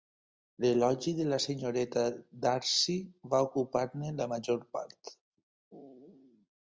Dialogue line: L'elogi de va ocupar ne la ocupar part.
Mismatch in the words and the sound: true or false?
true